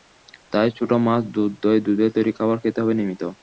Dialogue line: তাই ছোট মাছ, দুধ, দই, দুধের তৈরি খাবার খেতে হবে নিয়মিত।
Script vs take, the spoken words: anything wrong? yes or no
no